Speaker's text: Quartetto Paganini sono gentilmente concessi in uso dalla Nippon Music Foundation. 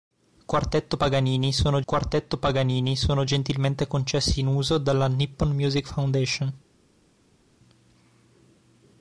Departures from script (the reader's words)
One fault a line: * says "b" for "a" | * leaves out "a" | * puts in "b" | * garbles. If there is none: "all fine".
* puts in "quartetto Paganini sono"